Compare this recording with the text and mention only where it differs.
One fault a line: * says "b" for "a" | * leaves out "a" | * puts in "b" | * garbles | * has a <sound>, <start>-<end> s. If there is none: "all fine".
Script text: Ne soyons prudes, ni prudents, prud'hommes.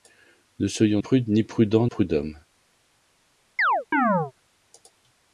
* has a chirp, 3.6-4.3 s